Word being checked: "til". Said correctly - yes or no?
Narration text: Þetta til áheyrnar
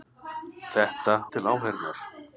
yes